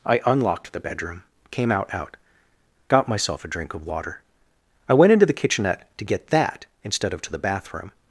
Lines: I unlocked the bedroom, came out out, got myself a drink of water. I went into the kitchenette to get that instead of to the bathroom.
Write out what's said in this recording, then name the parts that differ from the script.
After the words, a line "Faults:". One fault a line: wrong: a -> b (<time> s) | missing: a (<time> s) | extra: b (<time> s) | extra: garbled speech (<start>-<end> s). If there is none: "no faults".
I unlocked the bedroom, came out out, got myself a drink of water. I went into the kitchenette to get that instead of to the bathroom.
Faults:
no faults